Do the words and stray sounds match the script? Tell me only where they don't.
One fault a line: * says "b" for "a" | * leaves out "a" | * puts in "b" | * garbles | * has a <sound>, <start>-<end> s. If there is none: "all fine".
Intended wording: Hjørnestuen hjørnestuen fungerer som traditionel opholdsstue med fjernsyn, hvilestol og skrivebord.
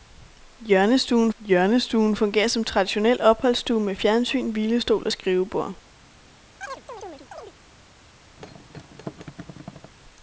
* has a chirp, 6.6-7.5 s
* has a thud, 8.4-9.9 s